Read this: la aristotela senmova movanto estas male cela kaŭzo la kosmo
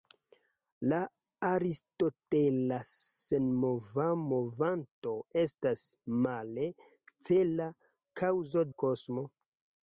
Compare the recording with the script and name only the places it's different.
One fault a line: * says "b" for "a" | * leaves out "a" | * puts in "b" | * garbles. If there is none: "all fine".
all fine